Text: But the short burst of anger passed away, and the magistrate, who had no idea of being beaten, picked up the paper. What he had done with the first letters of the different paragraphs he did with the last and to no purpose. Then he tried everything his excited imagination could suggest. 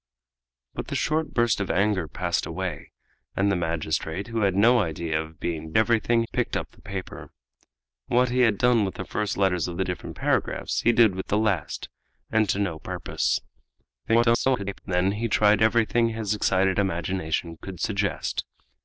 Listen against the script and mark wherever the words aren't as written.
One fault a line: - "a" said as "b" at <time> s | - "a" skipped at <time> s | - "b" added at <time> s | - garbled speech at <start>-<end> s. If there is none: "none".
- "beaten" said as "everything" at 5.8 s
- garbled speech at 14.1-14.8 s